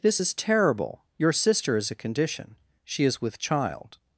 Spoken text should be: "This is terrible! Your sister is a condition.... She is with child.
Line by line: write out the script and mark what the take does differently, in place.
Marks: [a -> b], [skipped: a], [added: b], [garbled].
"This is terrible! Your sister is a condition.... She is with child.